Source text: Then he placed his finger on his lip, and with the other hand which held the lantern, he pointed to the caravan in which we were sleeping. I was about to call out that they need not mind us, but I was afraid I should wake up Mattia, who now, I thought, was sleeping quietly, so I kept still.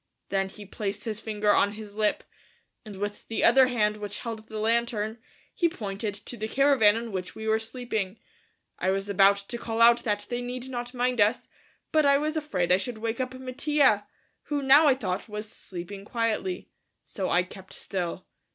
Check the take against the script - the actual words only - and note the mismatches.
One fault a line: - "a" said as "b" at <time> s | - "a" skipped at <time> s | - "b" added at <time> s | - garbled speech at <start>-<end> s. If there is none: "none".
none